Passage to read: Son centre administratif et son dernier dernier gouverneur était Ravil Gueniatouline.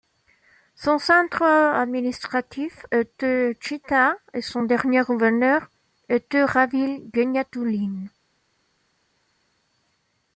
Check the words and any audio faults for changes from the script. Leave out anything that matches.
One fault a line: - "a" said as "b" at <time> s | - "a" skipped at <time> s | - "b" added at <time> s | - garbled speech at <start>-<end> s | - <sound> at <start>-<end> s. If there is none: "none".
- "était Tchita" added at 2.9 s
- "dernier" skipped at 5.0 s